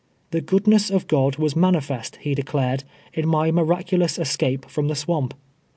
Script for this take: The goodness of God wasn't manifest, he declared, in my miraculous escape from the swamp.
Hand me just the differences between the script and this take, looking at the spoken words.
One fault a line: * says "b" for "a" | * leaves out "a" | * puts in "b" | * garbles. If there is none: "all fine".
* says "was" for "wasn't"